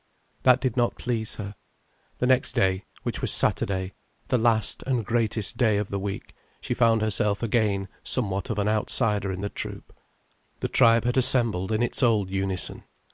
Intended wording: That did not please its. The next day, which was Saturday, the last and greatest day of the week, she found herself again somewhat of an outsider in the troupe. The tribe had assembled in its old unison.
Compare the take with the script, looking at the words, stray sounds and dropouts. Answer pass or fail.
fail